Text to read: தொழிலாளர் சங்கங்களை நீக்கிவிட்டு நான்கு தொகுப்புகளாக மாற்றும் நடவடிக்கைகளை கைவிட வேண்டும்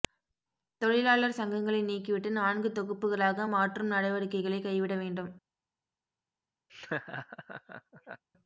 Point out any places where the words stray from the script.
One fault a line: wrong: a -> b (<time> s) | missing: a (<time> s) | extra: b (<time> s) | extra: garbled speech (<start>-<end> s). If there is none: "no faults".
no faults